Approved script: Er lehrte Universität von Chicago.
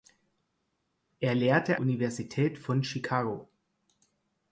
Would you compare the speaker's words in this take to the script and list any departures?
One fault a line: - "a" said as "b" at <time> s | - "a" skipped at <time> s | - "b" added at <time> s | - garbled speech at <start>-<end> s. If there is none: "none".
none